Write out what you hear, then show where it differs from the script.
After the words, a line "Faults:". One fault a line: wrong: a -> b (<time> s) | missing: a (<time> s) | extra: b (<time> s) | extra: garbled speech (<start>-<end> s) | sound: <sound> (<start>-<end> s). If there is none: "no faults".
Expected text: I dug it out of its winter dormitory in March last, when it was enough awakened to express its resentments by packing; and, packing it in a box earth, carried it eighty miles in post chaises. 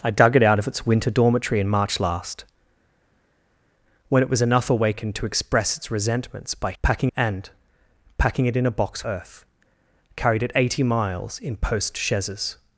I dug it out of its winter dormitory in March last, when it was enough awakened to express its resentments by packing; and, packing it in a box earth, carried it eighty miles in post chaises.
Faults:
no faults